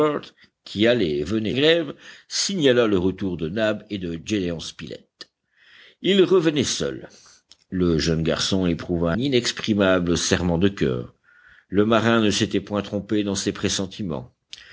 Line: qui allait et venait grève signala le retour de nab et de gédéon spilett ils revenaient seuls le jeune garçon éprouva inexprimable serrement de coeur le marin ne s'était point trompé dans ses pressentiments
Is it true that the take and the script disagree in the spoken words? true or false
false